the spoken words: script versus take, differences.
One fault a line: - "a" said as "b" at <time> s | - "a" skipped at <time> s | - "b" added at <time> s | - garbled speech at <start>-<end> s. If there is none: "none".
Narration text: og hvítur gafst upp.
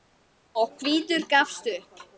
none